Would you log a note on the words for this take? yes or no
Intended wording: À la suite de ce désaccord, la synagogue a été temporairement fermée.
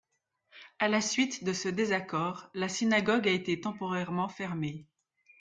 no